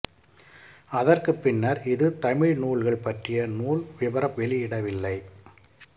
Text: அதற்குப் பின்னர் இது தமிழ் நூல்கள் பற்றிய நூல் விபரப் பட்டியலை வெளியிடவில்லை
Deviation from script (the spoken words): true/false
true